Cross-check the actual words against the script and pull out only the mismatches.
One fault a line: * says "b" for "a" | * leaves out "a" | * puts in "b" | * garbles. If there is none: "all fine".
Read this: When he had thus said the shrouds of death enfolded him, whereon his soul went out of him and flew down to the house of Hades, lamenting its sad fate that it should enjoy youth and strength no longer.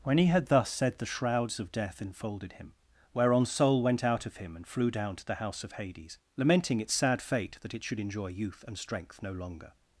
* leaves out "his"